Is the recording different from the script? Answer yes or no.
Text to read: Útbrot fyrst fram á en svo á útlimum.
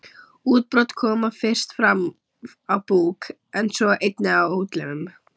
yes